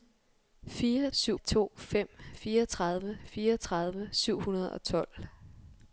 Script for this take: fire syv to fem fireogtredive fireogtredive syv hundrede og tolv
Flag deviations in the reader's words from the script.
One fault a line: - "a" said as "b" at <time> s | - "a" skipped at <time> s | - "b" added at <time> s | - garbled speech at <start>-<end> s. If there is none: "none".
none